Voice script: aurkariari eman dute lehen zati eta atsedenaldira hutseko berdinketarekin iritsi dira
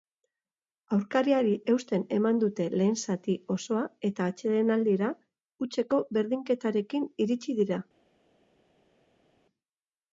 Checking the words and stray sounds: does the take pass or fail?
fail